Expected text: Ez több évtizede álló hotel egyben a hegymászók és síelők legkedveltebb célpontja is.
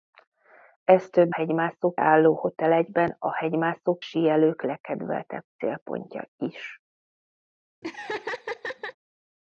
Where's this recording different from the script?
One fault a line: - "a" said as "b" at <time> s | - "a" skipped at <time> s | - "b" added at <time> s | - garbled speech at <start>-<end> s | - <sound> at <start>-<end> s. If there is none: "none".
- "évtizede" said as "hegymászók" at 1.3 s
- "és" skipped at 4.0 s
- laugh at 7.8-9.0 s